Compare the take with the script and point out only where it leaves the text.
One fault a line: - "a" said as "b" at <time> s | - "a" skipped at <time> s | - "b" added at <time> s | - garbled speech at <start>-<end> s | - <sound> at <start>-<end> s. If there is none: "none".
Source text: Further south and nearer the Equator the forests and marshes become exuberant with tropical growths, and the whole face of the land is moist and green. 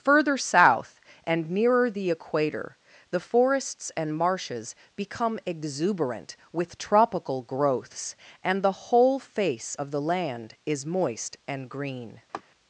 - laugh at 12.3-12.4 s